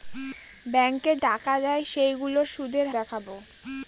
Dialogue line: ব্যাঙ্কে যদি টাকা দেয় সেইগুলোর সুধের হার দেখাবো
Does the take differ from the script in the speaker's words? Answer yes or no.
yes